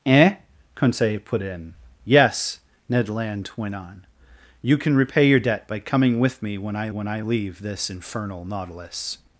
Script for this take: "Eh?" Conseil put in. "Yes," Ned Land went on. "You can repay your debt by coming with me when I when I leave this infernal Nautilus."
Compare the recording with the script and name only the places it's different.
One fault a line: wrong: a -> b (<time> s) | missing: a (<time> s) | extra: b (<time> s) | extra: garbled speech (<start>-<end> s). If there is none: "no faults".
no faults